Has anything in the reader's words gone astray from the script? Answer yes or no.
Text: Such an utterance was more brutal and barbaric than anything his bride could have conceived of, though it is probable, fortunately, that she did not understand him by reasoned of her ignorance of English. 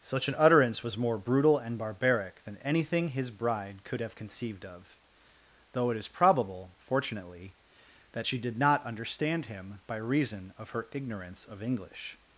yes